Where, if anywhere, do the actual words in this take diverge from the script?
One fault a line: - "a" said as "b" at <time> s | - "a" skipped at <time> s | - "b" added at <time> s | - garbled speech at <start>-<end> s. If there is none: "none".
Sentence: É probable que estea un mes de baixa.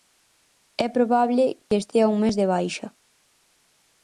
none